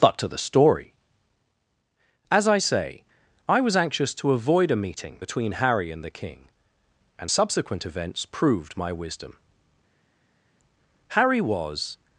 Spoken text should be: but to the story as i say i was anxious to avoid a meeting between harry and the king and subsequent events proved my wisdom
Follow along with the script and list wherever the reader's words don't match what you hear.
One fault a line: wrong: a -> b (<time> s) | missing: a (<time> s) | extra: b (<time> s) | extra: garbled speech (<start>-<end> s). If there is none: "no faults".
extra: harry was (11.1 s)